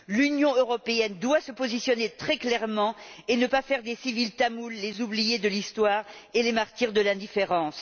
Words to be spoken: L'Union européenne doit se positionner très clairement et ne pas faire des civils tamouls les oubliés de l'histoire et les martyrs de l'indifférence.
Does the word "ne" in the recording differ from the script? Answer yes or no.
no